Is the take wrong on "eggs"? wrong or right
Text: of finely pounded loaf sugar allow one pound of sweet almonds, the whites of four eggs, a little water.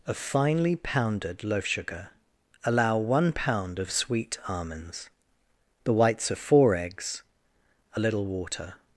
right